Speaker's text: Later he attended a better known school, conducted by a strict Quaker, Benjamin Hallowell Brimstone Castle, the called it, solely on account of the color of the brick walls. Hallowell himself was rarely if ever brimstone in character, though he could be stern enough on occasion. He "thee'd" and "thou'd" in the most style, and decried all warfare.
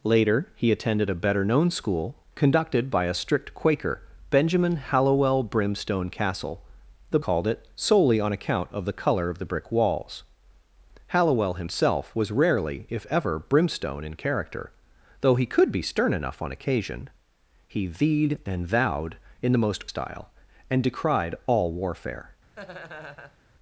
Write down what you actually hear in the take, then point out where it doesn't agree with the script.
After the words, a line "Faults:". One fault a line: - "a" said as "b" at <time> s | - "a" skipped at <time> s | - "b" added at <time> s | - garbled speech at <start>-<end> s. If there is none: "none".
Later he attended a better known school, conducted by a strict Quaker, Benjamin Hallowell Brimstone Castle, the called it, solely on account of the color of the brick walls. Hallowell himself was rarely if ever brimstone in character, though he could be stern enough on occasion. He "thee'd" and "thou'd" in the most style, and decried all warfare.
Faults:
none